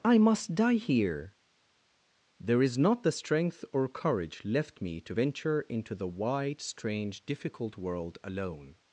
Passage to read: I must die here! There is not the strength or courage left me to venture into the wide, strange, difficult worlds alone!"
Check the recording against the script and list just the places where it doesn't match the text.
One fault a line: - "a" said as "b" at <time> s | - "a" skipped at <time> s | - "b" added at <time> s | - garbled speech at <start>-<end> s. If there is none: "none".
- "worlds" said as "world" at 7.8 s